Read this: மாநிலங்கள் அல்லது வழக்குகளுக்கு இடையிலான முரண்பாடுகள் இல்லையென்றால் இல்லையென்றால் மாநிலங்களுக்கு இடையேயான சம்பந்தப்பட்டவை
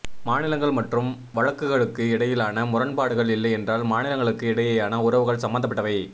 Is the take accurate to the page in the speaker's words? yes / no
no